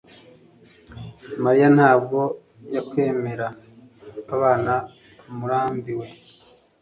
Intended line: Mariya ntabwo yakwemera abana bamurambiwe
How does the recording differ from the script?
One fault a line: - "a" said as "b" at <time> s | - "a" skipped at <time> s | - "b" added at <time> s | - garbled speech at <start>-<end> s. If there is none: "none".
none